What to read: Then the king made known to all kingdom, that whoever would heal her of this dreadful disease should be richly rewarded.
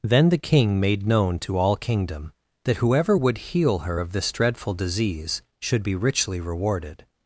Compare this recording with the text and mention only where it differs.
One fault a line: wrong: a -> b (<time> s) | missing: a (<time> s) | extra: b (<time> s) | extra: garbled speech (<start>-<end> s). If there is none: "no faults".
no faults